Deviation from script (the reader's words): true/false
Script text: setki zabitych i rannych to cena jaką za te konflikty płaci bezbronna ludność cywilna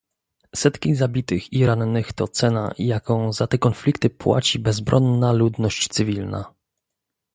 false